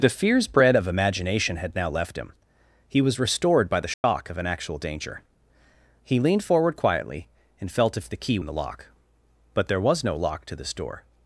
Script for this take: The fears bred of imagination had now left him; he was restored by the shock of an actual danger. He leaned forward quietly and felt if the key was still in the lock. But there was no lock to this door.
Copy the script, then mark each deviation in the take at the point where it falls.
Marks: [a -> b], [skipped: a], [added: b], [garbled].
The fears bred of imagination had now left him; he was restored by the shock of an actual danger. He leaned forward quietly and felt if the key [skipped: was still] in the lock. But there was no lock to this door.